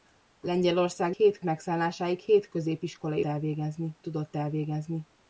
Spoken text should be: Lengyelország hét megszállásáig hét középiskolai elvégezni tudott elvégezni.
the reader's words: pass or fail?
pass